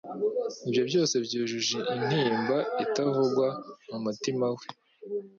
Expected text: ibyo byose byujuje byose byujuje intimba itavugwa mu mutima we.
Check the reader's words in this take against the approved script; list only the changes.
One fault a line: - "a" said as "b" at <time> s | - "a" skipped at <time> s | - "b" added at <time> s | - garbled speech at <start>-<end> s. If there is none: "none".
- "byose byujuje" skipped at 1.8 s